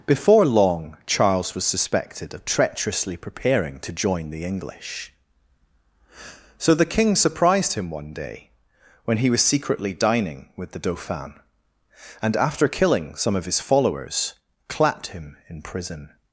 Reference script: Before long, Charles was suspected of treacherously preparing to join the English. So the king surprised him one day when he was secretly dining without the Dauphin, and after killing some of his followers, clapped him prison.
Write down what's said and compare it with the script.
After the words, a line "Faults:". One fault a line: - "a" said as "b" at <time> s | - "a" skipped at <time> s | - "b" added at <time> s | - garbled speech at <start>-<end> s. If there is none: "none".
Before long, Charles was suspected of treacherously preparing to join the English. So the king surprised him one day when he was secretly dining with the Dauphin, and after killing some of his followers, clapped him in prison.
Faults:
- "without" said as "with" at 10.6 s
- "in" added at 15.5 s